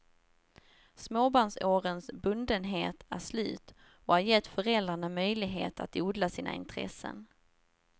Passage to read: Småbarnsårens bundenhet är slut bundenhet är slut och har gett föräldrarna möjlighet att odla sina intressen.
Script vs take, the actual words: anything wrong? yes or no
yes